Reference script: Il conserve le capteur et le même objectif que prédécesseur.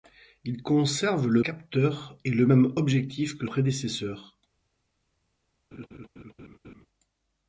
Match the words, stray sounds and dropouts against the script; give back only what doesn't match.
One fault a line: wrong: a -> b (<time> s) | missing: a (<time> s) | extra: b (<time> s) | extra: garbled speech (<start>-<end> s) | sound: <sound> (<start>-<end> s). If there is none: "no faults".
sound: laugh (5.7-6.9 s)